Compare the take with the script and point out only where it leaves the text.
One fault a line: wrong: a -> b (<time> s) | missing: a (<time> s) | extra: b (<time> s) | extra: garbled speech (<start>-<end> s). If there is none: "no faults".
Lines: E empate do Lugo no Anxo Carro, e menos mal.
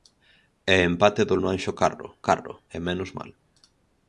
missing: Lugo (1.4 s)
extra: Carro (2.3 s)